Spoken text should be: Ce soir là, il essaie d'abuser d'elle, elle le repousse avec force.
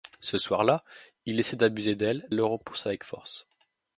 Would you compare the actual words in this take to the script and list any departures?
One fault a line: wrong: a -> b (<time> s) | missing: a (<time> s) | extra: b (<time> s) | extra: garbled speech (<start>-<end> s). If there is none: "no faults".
no faults